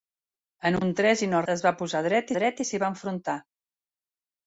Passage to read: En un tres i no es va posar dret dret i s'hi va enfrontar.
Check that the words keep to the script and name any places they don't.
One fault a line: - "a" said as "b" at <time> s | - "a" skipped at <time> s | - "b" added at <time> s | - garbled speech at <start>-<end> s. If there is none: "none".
none